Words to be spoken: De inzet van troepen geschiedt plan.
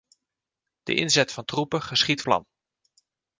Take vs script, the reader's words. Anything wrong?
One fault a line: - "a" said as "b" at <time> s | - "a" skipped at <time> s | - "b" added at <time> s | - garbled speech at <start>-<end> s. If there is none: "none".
none